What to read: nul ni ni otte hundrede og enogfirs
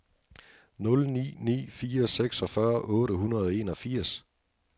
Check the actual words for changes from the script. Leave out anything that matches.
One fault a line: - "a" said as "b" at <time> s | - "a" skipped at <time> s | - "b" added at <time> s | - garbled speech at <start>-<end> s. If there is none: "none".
- "fire seksogfyrre" added at 1.8 s